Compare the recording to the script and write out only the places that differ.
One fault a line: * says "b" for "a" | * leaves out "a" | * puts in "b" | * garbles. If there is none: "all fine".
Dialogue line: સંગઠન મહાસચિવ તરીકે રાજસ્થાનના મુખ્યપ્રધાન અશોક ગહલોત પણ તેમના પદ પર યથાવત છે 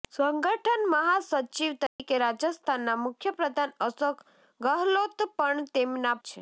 * leaves out "પદ પર યથાવત"